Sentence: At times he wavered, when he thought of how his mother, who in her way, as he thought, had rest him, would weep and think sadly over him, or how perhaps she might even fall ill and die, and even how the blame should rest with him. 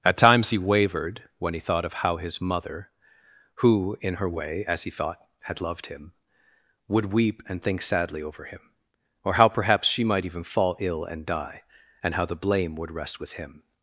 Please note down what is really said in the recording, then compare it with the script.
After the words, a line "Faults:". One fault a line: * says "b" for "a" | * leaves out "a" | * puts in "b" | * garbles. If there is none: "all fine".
At times he wavered, when he thought of how his mother, who in her way, as he thought, had loved him, would weep and think sadly over him, or how perhaps she might even fall ill and die, and how the blame would rest with him.
Faults:
* says "loved" for "rest"
* leaves out "even"
* says "would" for "should"